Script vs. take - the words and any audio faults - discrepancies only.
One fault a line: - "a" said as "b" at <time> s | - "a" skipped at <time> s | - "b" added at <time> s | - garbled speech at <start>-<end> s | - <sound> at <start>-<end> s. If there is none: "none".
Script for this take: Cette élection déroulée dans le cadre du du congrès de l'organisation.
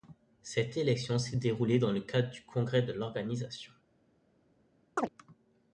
- "s'est" added at 1.2 s
- "du" skipped at 2.5 s
- chirp at 5.0-5.1 s